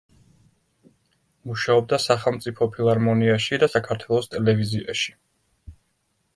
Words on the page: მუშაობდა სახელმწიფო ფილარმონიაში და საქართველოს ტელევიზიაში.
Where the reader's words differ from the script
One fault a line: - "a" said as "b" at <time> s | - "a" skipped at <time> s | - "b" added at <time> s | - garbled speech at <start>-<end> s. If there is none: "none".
none